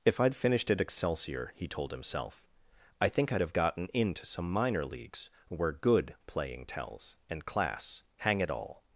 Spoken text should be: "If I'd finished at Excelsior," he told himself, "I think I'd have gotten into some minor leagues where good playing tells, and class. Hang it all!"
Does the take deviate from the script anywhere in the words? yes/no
no